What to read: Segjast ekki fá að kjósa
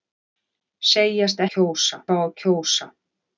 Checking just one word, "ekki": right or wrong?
wrong